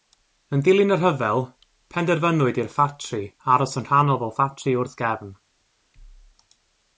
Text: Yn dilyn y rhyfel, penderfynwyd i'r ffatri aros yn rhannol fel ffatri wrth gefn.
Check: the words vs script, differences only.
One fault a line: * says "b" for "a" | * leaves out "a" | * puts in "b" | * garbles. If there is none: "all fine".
all fine